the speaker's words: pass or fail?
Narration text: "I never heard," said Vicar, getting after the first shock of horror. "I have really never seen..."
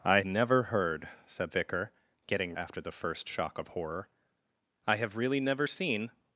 pass